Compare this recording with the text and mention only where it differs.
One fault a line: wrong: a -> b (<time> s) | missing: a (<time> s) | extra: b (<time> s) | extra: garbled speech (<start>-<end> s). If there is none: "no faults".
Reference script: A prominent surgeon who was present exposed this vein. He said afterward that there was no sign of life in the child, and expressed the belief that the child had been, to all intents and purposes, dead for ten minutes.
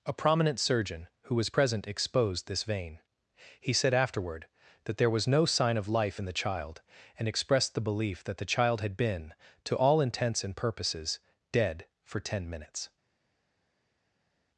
no faults